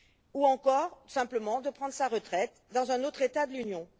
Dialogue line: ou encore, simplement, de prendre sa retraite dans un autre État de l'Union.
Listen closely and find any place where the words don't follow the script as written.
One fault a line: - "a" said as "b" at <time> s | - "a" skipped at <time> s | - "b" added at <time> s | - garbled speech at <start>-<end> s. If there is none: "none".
none